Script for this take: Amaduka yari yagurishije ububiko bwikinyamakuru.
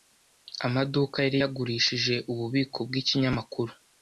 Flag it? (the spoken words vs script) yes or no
no